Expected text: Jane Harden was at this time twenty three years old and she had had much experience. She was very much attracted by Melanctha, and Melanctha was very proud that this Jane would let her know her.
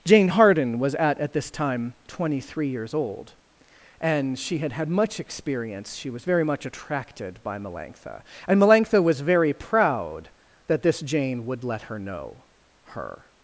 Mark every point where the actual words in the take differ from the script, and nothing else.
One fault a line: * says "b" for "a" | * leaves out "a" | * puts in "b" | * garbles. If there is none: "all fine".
* puts in "at"